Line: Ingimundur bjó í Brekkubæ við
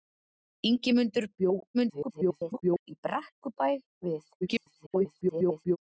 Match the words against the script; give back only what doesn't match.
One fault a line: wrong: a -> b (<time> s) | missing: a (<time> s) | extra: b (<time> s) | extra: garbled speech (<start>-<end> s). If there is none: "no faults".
extra: garbled speech (1.7-2.9 s)
extra: garbled speech (4.4-5.8 s)